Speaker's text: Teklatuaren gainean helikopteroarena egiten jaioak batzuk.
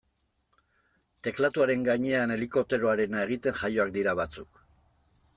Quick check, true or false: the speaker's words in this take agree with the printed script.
false